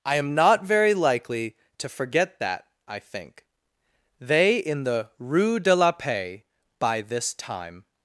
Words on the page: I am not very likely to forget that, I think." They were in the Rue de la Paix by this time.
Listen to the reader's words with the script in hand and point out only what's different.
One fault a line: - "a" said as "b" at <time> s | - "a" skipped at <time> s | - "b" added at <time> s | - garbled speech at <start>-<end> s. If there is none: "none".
- "were" skipped at 4.6 s